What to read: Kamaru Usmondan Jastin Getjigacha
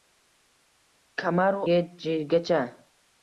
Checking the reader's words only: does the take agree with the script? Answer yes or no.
no